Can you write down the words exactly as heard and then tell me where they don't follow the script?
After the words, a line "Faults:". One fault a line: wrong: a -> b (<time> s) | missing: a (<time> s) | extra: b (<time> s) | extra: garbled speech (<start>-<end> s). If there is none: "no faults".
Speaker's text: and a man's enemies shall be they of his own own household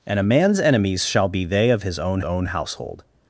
and a man's enemies shall be they of his own own household
Faults:
no faults